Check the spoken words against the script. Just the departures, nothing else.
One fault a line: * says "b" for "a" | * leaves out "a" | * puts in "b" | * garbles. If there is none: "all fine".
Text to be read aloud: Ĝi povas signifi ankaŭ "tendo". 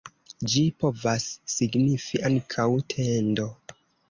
all fine